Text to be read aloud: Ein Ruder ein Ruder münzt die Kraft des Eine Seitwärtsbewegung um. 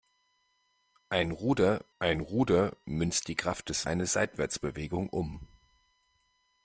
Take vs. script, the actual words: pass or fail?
pass